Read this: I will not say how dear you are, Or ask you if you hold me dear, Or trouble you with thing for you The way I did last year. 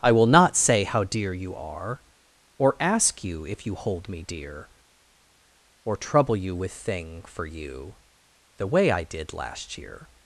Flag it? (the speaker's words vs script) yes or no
no